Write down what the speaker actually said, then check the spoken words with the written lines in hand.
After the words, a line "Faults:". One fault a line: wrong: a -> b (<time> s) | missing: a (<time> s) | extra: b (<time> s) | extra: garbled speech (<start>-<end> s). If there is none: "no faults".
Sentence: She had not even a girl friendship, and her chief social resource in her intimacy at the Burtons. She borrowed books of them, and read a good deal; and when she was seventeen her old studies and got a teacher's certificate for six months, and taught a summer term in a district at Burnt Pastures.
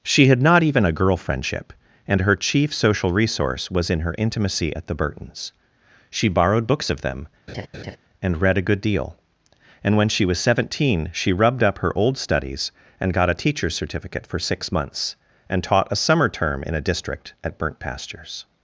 She had not even a girl friendship, and her chief social resource was in her intimacy at the Burtons. She borrowed books of them, and read a good deal; and when she was seventeen she rubbed up her old studies and got a teacher's certificate for six months, and taught a summer term in a district at Burnt Pastures.
Faults:
extra: was (3.7 s)
extra: she rubbed up (11.1 s)